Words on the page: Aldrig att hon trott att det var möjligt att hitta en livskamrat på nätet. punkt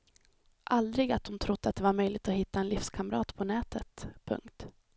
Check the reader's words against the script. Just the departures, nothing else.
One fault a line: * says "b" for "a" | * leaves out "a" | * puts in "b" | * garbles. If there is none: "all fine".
all fine